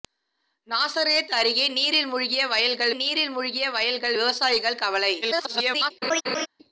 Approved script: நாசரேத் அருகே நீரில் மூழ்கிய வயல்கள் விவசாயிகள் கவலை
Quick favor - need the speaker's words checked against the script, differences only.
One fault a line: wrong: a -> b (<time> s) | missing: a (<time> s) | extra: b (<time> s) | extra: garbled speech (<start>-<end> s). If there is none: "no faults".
extra: நீரில் மூழ்கிய வயல்கள் (2.9 s)
extra: garbled speech (5.2-5.9 s)